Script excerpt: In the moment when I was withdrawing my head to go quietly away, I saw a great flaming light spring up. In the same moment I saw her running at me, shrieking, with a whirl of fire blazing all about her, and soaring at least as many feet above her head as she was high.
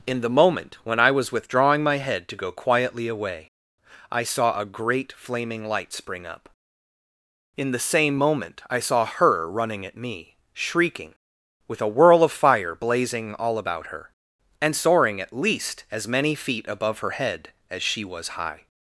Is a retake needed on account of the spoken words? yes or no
no